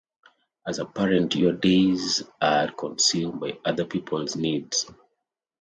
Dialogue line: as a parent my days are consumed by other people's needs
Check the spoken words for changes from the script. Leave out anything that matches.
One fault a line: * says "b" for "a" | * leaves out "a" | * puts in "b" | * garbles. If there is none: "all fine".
* says "your" for "my"